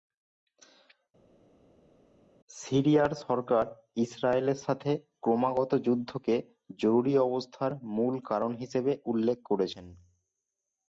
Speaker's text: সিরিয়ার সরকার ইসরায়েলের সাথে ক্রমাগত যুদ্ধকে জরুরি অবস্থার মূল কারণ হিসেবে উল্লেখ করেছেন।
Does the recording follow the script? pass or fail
pass